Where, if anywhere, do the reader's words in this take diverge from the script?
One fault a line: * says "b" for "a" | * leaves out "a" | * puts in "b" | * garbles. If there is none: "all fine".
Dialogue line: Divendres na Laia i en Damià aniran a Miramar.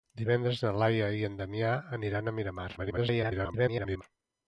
* garbles